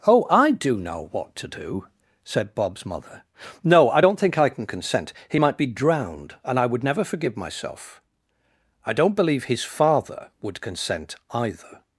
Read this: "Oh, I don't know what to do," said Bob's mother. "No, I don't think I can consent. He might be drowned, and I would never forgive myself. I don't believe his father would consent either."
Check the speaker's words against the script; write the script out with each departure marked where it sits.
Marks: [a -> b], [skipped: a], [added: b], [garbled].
"Oh, I [don't -> do] know what to do," said Bob's mother. "No, I don't think I can consent. He might be drowned, and I would never forgive myself. I don't believe his father would consent either."